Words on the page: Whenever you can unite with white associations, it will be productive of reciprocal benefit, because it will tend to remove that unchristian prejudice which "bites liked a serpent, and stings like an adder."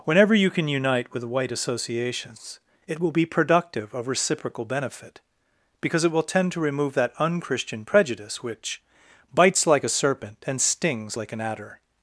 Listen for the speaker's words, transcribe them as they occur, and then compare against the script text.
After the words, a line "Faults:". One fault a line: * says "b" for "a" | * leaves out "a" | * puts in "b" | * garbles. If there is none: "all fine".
Whenever you can unite with white associations, it will be productive of reciprocal benefit, because it will tend to remove that unchristian prejudice which "bites like a serpent, and stings like an adder."
Faults:
* says "like" for "liked"